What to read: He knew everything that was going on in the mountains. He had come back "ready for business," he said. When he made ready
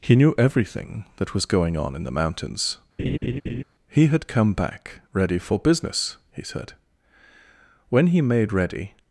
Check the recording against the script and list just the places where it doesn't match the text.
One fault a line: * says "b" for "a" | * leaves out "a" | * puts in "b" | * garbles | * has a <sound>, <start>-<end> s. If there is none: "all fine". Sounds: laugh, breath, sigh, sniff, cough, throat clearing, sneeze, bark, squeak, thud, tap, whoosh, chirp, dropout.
* has a laugh, 3.0-3.6 s